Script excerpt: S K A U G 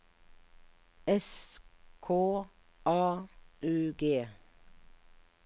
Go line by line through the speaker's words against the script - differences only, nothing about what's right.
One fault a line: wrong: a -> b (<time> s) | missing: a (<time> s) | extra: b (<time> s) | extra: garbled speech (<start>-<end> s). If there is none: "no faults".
no faults